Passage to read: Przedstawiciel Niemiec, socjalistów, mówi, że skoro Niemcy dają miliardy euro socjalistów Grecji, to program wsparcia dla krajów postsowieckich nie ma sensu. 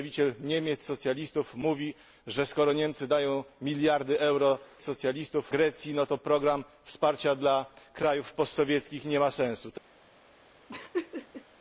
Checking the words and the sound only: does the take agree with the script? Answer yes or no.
no